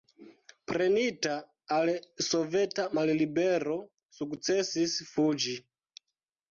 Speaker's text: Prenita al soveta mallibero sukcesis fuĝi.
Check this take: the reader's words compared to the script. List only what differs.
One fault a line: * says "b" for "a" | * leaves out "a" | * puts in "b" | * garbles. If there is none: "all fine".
all fine